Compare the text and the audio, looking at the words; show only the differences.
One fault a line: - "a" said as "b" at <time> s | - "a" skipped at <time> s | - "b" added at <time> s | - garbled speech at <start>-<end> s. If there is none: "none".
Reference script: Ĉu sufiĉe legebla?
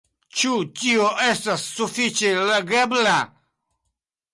- "tio estas" added at 0.8 s